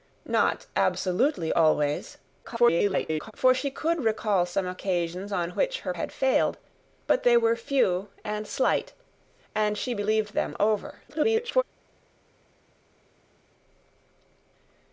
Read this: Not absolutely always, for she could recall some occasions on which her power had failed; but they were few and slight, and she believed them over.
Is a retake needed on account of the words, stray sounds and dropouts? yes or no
yes